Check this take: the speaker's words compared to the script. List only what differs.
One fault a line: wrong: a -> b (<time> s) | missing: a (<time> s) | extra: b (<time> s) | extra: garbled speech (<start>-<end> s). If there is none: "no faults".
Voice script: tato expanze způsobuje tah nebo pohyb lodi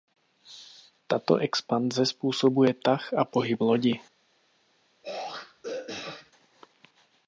wrong: nebo -> a (3.1 s)